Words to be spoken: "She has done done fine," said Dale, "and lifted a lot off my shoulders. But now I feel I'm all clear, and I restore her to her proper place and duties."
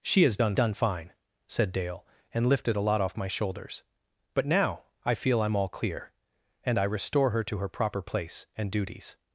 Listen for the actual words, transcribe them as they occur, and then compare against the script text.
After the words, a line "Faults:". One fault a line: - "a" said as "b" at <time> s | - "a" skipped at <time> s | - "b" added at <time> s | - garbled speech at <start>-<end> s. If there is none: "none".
"She has done done fine," said Dale, "and lifted a lot off my shoulders. But now I feel I'm all clear, and I restore her to her proper place and duties."
Faults:
none